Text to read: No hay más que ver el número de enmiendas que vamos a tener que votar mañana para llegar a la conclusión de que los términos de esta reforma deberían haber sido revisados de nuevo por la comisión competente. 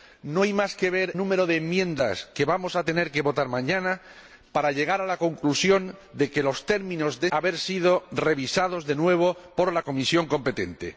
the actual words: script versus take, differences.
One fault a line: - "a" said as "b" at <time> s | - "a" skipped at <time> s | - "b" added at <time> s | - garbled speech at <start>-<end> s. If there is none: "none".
- "el" skipped at 1.1 s
- "esta reforma deberían" skipped at 7.3 s